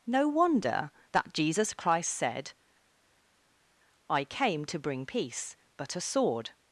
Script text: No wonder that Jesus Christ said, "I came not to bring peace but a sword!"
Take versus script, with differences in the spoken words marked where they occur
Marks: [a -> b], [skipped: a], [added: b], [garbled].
No wonder that Jesus Christ said, "I came [skipped: not] to bring peace but a sword!"